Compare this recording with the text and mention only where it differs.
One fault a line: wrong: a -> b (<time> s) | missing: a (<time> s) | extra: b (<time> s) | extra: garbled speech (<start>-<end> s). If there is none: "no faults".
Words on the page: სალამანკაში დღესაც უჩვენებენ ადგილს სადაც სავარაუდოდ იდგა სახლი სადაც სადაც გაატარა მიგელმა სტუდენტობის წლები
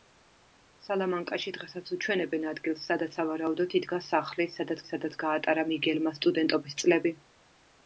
no faults